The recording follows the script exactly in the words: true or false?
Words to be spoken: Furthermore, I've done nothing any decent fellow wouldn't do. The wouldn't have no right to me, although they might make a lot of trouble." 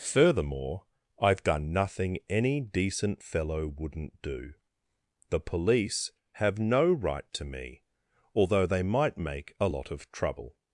false